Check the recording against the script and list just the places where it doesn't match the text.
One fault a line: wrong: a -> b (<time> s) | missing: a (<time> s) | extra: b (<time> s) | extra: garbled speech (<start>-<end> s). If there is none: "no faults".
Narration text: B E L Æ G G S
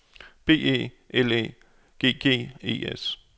extra: E (2.6 s)